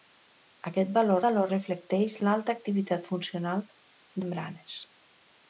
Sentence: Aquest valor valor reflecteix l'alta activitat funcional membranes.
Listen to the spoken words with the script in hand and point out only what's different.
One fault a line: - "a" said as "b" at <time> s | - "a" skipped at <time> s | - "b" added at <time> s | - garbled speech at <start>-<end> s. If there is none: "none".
none